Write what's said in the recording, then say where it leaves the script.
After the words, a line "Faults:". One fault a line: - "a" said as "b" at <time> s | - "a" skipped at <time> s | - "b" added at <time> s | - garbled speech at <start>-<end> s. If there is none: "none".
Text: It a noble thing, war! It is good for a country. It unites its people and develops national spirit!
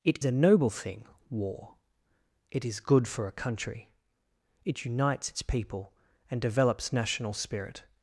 It a noble thing, war! It is good for a country. It unites its people and develops national spirit!
Faults:
none